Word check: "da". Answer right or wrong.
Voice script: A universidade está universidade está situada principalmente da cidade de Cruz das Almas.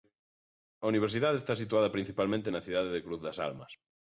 wrong